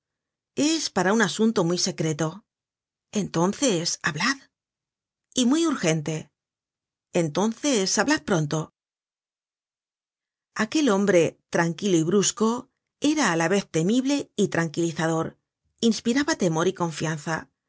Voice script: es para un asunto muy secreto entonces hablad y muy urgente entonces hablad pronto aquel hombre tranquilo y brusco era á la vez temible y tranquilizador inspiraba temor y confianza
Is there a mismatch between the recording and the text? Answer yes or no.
no